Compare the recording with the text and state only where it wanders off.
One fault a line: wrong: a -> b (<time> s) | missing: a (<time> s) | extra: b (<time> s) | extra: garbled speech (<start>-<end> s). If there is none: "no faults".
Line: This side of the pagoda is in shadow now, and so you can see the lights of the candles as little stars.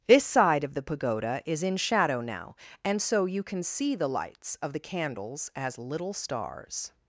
no faults